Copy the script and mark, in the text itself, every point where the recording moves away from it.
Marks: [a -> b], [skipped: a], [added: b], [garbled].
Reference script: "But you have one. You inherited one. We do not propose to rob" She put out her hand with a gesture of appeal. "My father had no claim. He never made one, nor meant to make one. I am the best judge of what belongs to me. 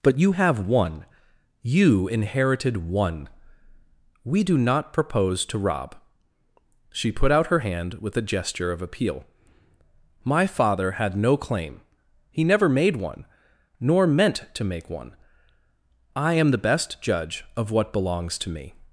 "But you have one. You inherited one. We do not propose to rob" She put out her hand with a gesture of appeal. "My father had no claim. He never made one, nor meant to make one. I am the best judge of what belongs to me.